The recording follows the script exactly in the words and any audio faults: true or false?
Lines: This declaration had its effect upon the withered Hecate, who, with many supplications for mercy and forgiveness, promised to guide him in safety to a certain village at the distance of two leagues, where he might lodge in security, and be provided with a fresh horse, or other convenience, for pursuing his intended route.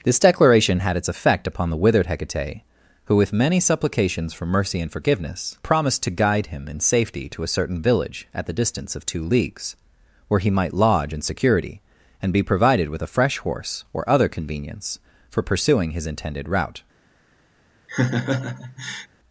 false